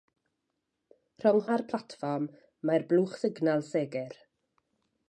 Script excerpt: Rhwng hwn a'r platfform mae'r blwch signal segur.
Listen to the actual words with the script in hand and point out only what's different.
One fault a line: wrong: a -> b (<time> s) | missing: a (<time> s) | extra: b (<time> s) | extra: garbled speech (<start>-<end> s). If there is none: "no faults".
missing: hwn (1.4 s)